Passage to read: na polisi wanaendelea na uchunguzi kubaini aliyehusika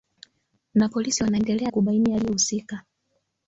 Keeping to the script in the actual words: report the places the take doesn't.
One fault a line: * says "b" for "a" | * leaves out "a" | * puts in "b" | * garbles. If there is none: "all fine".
* leaves out "na uchunguzi"